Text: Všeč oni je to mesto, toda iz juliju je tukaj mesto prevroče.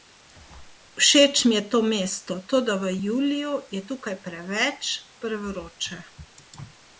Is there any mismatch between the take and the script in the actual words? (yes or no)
yes